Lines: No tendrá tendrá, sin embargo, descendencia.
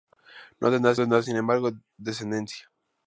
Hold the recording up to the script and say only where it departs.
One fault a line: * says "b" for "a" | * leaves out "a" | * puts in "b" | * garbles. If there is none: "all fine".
all fine